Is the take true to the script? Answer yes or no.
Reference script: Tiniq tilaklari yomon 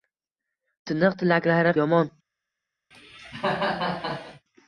yes